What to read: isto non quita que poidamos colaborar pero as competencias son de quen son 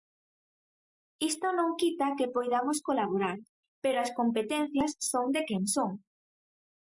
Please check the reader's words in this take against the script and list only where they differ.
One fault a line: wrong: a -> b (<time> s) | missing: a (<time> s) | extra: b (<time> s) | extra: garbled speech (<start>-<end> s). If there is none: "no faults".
no faults